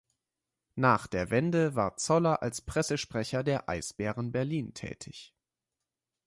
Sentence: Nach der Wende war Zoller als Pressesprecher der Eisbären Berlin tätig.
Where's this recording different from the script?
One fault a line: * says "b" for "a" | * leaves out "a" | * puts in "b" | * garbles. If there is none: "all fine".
all fine